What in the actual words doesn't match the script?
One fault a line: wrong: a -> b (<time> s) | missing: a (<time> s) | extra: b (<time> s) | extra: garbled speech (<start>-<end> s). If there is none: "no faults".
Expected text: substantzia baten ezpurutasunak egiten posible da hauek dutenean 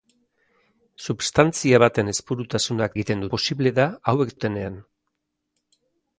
no faults